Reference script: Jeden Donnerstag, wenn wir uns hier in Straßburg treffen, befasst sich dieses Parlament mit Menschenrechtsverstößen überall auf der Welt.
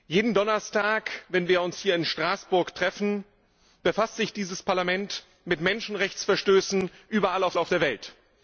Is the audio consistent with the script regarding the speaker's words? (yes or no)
no